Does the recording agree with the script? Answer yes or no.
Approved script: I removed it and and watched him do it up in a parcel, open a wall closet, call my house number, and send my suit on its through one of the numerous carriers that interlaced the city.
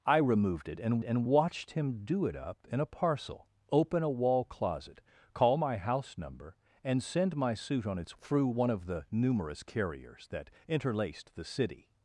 yes